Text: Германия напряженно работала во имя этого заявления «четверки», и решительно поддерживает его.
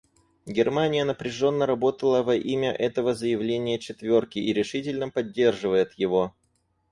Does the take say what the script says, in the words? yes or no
yes